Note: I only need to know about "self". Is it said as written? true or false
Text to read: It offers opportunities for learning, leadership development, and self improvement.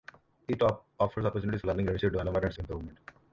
false